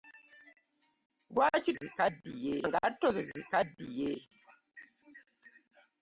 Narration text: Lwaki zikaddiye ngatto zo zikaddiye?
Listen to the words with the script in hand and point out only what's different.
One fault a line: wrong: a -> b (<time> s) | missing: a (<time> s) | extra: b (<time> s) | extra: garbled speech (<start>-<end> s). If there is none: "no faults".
no faults